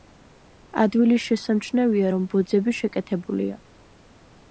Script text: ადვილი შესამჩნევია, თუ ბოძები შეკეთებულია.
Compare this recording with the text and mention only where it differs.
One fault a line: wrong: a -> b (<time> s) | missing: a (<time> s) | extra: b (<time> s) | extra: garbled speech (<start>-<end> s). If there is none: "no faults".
wrong: თუ -> რომ (2.1 s)